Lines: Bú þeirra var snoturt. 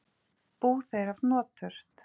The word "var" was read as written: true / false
false